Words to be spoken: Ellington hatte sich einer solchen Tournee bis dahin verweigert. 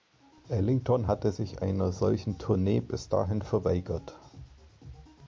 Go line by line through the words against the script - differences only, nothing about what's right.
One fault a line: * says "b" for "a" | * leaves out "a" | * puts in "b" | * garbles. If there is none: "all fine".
all fine